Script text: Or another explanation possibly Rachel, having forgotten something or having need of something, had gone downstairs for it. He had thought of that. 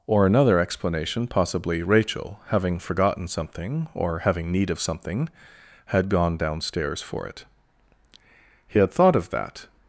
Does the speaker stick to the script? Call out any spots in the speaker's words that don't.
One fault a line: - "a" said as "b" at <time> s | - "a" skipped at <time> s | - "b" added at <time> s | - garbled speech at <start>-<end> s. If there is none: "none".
none